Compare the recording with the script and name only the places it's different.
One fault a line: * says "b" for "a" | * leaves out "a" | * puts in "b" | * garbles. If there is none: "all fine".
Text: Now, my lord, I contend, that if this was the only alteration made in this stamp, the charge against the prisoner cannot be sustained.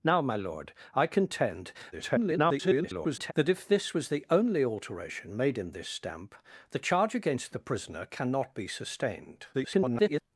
* garbles
* garbles